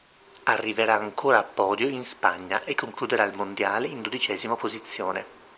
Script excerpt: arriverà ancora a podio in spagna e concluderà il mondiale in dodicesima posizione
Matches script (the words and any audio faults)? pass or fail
pass